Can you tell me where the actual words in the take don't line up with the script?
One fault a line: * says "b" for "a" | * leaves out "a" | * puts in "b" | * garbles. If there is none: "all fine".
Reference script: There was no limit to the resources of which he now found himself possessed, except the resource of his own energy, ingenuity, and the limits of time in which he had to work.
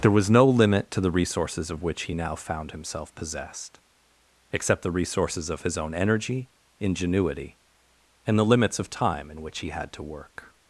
* says "resources" for "resource"